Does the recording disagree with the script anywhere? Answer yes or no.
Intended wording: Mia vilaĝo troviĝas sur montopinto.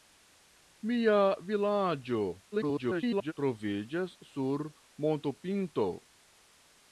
yes